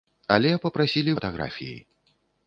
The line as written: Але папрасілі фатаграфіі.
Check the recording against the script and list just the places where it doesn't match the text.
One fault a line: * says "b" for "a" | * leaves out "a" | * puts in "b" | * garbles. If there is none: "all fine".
all fine